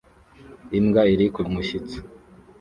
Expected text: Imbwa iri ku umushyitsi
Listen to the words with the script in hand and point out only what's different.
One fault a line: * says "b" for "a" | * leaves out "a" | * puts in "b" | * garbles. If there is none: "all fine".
all fine